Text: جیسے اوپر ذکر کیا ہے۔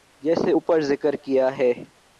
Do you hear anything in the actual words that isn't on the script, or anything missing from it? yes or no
no